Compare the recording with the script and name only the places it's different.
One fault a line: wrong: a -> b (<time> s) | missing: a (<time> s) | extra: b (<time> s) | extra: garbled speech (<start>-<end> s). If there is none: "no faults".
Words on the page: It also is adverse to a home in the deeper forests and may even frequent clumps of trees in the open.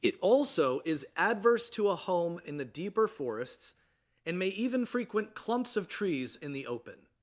no faults